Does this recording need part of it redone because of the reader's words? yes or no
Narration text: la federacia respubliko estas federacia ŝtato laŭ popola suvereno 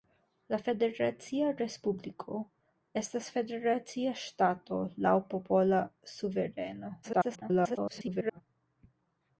yes